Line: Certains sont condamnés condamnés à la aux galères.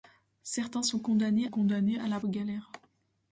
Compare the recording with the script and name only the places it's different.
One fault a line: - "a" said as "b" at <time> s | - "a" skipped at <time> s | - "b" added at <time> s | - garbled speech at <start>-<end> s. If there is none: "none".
none